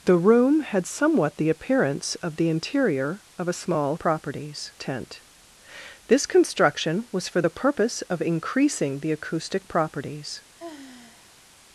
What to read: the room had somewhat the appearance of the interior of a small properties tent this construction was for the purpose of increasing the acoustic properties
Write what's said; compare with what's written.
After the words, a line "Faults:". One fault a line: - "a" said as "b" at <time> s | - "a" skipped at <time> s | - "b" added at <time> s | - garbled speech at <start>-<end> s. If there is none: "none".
the room had somewhat the appearance of the interior of a small properties tent this construction was for the purpose of increasing the acoustic properties
Faults:
none